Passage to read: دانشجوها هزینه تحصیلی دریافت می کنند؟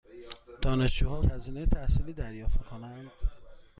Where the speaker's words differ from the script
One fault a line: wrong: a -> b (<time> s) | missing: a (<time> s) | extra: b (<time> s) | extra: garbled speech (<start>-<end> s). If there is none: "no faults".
no faults